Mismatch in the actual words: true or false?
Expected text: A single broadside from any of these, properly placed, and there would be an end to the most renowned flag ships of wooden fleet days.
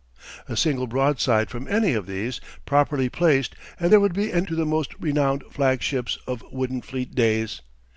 true